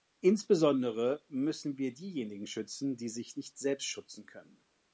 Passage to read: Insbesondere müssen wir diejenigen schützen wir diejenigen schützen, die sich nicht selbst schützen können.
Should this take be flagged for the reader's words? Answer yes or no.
yes